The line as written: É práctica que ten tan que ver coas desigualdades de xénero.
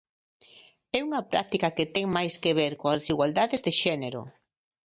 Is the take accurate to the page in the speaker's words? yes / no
no